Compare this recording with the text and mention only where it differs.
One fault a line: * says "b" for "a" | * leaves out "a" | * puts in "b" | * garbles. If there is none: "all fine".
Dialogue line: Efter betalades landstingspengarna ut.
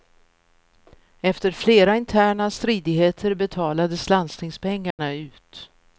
* puts in "flera interna stridigheter"